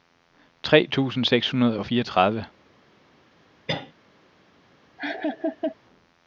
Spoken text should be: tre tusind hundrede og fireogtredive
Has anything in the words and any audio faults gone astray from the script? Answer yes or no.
yes